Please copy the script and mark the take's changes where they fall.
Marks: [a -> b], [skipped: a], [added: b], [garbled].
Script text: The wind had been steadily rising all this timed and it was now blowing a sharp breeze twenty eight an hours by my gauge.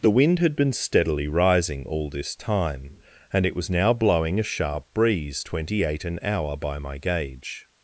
The wind had been steadily rising all this [timed -> time] and it was now blowing a sharp breeze twenty eight an [hours -> hour] by my gauge.